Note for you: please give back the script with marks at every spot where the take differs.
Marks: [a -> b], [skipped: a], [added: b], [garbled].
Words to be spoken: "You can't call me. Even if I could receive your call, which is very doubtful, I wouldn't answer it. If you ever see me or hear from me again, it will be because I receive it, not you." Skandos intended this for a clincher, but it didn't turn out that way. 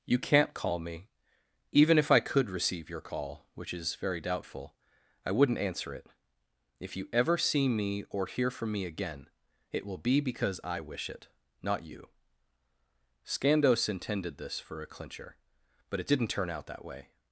"You can't call me. Even if I could receive your call, which is very doubtful, I wouldn't answer it. If you ever see me or hear from me again, it will be because I [receive -> wish] it, not you." Skandos intended this for a clincher, but it didn't turn out that way.